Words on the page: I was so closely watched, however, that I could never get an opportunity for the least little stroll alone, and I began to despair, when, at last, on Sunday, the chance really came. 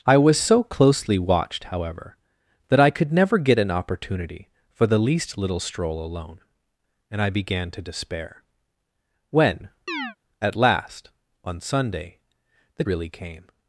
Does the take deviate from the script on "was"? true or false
false